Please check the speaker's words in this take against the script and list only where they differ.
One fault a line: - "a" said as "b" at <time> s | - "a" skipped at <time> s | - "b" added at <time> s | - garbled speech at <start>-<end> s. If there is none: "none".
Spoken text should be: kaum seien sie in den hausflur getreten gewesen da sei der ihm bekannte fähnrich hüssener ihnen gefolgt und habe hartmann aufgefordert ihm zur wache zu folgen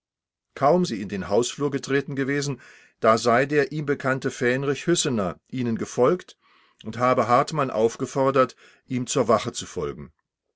- "seien" skipped at 0.8 s